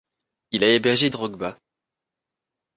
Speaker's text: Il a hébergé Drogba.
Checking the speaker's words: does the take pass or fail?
pass